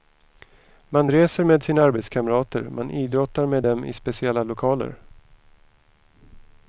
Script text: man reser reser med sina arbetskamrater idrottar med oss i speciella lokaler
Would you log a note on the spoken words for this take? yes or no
yes